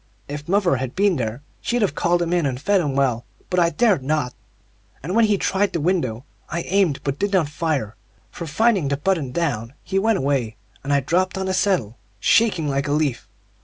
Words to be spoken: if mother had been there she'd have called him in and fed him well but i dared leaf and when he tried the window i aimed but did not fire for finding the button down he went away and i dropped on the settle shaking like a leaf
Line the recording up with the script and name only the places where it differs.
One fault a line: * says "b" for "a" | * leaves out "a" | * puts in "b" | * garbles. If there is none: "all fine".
* says "not" for "leaf"